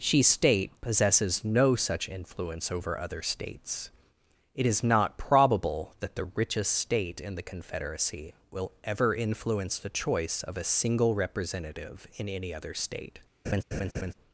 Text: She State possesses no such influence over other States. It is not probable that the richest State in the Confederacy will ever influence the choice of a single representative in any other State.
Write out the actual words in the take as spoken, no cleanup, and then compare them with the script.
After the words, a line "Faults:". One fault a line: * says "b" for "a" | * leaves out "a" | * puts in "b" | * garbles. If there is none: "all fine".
She State possesses no such influence over other States. It is not probable that the richest State in the Confederacy will ever influence the choice of a single representative in any other State.
Faults:
all fine